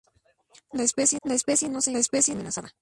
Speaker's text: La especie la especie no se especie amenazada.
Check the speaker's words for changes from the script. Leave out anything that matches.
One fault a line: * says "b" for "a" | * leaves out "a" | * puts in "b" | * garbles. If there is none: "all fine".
all fine